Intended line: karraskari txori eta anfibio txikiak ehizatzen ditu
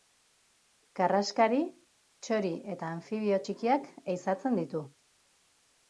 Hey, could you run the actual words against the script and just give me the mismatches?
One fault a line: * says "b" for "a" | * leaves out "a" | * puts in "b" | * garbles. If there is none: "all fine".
all fine